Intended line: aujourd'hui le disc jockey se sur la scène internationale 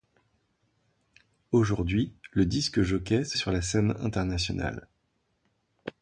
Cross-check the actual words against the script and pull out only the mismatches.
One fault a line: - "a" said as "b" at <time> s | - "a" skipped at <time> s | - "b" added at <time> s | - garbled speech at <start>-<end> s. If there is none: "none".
none